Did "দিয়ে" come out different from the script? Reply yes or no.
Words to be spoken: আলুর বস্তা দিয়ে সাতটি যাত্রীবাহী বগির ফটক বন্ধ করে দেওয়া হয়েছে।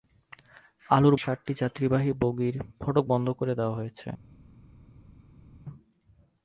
yes